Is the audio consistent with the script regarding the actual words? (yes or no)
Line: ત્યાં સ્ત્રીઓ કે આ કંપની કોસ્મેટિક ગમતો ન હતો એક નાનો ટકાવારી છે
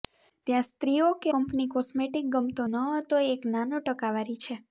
no